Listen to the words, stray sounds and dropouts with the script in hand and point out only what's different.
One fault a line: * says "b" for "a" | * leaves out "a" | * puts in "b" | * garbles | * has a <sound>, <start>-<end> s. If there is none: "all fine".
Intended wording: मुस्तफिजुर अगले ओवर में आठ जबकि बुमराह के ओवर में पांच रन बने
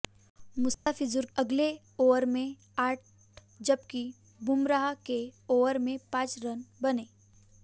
* has a dropout, 0.7-0.9 s